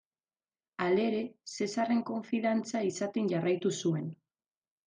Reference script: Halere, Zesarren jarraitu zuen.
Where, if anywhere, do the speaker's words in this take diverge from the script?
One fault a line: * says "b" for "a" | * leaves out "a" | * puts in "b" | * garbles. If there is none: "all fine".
* puts in "konfidantza izaten"